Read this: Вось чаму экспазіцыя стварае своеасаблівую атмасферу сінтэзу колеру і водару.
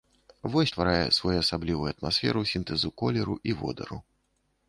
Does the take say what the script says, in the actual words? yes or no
no